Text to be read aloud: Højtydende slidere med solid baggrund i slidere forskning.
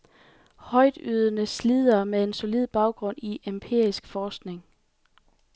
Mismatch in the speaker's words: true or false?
true